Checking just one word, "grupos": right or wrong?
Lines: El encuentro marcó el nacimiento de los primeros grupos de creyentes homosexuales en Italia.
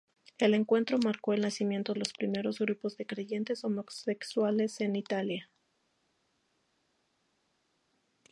right